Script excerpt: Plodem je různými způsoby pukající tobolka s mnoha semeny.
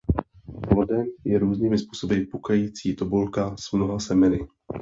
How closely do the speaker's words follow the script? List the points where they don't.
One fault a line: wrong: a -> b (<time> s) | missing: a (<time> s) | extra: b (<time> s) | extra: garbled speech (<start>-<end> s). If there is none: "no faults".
no faults